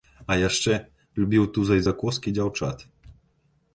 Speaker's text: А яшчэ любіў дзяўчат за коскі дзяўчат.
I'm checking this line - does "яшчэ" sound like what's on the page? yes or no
yes